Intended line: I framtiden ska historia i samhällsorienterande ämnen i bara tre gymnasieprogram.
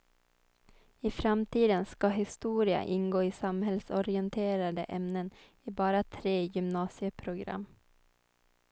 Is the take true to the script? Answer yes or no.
no